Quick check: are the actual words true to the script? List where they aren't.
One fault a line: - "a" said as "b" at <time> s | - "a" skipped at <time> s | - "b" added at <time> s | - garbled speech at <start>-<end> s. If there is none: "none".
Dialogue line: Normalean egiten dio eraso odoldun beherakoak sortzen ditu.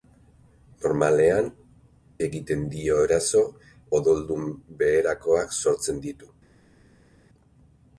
none